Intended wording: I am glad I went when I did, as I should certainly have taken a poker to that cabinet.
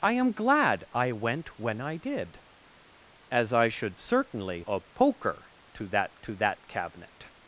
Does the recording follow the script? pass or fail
fail